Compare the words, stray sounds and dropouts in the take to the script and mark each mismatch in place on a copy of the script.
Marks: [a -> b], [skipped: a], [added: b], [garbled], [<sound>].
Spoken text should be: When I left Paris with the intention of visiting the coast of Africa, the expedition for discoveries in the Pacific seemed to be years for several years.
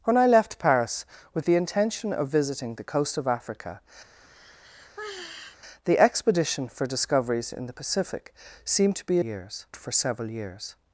When I left Paris with the intention of visiting the coast of Africa, [sigh] the expedition for discoveries in the Pacific seemed to be years for several years.